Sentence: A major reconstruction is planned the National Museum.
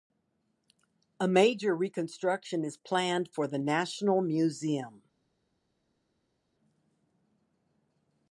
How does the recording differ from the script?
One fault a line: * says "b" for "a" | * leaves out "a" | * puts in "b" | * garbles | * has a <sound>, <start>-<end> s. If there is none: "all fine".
* puts in "for"